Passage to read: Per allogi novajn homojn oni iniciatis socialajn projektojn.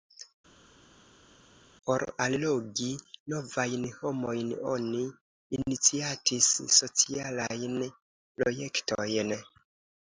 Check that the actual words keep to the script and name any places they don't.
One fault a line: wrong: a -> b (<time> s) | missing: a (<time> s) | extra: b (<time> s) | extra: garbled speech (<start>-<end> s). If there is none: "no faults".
wrong: Per -> Por (1.9 s)